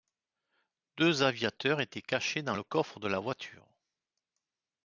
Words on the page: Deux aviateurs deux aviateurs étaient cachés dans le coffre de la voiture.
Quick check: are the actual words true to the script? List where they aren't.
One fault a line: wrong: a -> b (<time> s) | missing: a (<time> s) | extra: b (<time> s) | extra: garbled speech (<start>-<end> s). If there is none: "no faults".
missing: deux aviateurs (1.8 s)